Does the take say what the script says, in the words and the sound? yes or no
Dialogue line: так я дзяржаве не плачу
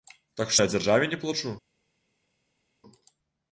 yes